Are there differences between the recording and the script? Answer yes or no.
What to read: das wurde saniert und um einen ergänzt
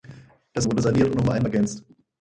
no